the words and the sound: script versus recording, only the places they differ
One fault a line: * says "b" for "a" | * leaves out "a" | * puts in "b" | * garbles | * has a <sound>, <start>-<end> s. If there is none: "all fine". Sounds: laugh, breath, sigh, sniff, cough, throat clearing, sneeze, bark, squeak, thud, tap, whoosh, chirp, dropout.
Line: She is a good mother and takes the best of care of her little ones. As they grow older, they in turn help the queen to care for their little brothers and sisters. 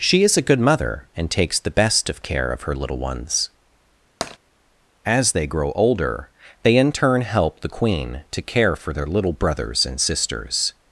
* has a tap, 4.2-4.4 s